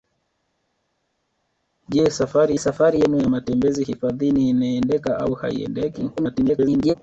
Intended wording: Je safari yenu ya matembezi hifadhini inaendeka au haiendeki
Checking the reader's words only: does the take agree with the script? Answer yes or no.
no